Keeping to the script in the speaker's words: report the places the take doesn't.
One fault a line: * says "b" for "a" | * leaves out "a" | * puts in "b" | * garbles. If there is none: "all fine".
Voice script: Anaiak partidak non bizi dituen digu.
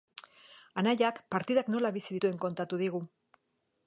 * says "nola" for "non"
* puts in "kontatu"